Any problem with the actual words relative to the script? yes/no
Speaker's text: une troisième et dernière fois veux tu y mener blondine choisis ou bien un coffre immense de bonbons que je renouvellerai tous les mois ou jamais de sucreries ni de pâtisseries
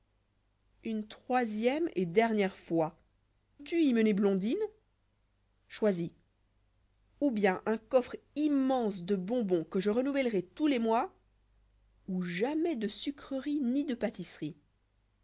yes